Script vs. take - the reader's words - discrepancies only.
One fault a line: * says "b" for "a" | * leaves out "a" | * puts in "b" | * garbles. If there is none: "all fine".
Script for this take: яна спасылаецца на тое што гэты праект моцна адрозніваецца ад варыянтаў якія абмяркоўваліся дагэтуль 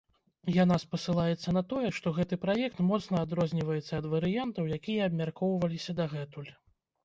all fine